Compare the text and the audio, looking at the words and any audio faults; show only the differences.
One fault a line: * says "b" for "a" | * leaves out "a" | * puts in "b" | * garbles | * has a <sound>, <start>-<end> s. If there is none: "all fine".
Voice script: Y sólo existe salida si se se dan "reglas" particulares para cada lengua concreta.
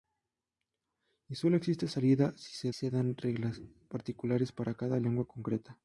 all fine